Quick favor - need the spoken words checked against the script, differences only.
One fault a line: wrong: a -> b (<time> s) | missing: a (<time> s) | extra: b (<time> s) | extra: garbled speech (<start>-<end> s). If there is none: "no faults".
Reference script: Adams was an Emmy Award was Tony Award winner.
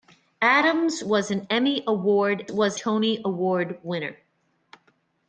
no faults